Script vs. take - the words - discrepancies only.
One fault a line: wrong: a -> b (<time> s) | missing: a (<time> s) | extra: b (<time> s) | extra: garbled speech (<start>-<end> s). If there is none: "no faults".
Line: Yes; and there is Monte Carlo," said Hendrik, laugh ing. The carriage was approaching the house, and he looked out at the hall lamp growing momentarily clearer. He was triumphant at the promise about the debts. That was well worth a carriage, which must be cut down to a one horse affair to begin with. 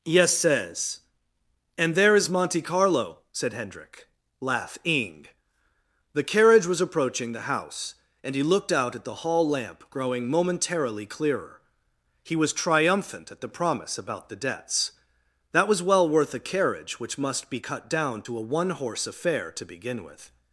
extra: says (0.3 s)